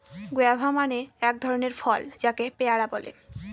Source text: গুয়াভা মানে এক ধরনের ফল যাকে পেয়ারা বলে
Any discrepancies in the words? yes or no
no